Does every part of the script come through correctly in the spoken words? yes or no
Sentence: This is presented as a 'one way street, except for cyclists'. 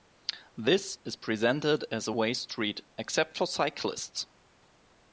no